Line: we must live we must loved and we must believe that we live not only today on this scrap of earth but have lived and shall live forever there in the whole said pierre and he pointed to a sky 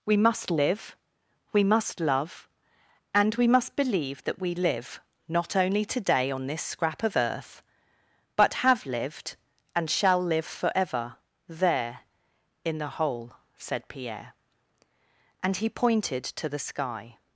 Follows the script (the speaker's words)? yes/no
no